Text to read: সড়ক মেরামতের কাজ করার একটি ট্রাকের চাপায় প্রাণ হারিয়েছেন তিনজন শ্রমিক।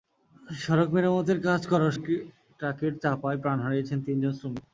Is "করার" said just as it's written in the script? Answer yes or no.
yes